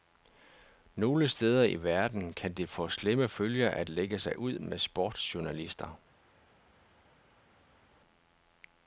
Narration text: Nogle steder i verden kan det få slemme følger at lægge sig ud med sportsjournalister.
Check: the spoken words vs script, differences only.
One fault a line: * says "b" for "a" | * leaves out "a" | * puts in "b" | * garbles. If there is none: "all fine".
all fine